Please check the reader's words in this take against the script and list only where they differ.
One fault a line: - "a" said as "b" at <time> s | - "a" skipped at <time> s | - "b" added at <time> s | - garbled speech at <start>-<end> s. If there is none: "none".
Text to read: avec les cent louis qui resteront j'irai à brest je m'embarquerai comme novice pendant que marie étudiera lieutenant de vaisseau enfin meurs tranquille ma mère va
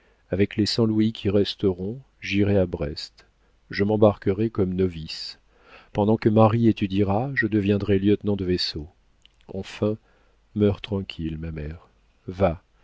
- "je deviendrai" added at 7.3 s